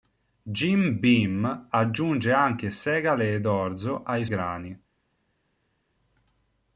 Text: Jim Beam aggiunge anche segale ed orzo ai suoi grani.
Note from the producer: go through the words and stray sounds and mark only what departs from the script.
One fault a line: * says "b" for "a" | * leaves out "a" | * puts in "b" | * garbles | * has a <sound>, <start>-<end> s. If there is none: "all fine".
* leaves out "suoi"